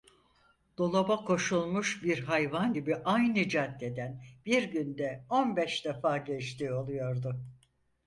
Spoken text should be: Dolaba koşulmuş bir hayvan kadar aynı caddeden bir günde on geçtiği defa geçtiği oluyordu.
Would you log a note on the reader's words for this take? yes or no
yes